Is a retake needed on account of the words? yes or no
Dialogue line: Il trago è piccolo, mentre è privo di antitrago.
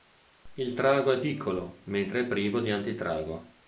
no